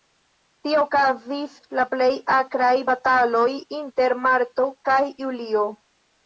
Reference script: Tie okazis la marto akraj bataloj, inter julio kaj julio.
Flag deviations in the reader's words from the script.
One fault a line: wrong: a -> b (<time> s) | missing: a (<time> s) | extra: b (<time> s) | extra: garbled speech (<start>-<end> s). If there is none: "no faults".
wrong: marto -> plej (1.9 s)
wrong: julio -> marto (4.3 s)